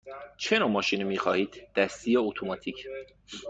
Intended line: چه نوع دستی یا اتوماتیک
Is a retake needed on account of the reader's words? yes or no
yes